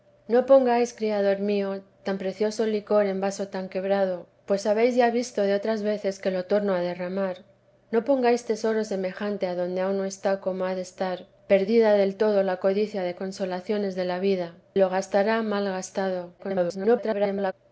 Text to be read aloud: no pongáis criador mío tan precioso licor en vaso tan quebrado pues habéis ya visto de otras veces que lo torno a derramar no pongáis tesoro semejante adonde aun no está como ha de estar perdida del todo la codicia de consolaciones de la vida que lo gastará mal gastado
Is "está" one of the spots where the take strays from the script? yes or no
no